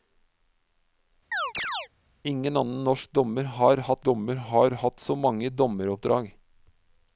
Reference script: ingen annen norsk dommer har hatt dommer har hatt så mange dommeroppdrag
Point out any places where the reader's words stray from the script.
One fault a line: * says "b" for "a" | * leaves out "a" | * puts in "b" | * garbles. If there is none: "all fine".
all fine